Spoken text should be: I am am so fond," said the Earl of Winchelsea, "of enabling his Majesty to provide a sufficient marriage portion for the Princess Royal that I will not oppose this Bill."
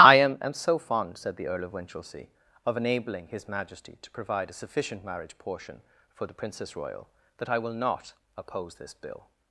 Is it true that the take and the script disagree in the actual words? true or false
false